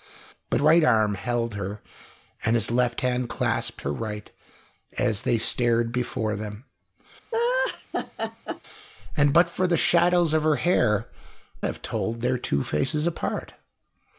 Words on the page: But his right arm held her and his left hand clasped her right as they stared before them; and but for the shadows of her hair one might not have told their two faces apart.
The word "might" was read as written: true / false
false